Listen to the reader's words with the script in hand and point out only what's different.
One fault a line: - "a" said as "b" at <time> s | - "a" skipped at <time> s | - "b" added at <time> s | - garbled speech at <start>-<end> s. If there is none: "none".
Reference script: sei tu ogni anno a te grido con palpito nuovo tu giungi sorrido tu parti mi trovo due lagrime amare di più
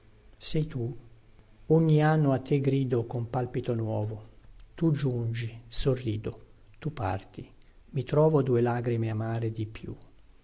none